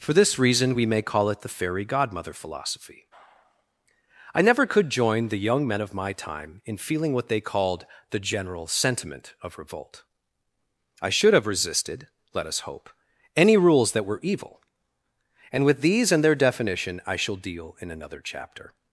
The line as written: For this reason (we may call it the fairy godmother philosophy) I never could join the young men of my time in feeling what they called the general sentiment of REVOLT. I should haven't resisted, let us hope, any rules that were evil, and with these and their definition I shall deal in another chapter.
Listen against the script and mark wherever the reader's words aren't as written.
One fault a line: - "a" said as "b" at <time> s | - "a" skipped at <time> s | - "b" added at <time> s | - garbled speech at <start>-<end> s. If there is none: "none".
- "haven't" said as "have" at 11.3 s